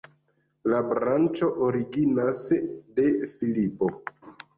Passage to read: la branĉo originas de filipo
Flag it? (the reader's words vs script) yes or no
no